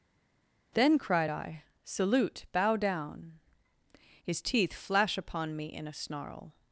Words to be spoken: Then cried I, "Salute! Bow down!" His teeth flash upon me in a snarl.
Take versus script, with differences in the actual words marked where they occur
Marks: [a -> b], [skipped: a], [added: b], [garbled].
Then cried I, "Salute! Bow down!" His teeth flash upon me in a snarl.